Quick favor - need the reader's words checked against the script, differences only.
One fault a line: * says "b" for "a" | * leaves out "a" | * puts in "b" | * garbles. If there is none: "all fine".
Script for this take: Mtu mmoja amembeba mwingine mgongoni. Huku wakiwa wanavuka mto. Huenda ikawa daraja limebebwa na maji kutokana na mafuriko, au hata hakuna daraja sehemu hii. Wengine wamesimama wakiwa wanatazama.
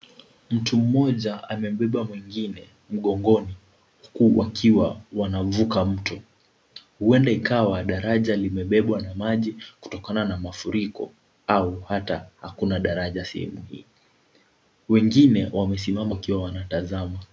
all fine